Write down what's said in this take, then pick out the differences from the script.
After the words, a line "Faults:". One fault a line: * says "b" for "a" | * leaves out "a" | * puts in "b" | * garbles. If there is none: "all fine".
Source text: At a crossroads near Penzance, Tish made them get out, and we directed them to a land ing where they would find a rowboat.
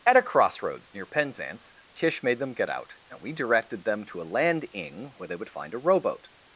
At a crossroads near Penzance, Tish made them get out, and we directed them to a land ing where they would find a rowboat.
Faults:
all fine